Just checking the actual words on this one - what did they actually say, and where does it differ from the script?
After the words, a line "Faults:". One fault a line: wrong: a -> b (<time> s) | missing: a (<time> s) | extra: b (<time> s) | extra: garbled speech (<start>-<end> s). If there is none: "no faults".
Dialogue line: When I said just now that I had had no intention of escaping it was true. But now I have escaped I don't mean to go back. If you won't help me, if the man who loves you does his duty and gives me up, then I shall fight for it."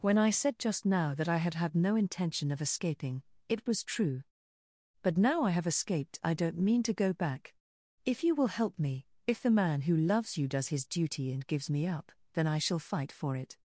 When I said just now that I had had no intention of escaping it was true. But now I have escaped I don't mean to go back. If you will help me, if the man who loves you does his duty and gives me up, then I shall fight for it."
Faults:
wrong: won't -> will (8.3 s)